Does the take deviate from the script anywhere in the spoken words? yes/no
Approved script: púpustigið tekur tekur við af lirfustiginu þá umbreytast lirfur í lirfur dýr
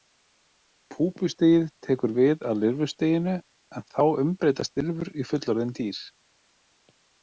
yes